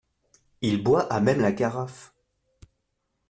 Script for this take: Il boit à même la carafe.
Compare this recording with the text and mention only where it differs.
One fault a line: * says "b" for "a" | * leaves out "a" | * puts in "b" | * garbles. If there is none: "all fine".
all fine